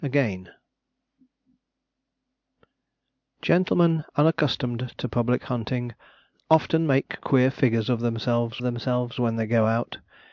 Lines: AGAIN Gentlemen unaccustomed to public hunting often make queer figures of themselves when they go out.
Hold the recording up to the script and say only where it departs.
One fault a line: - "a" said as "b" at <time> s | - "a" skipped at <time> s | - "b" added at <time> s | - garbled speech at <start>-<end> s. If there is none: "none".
- "themselves" added at 8.6 s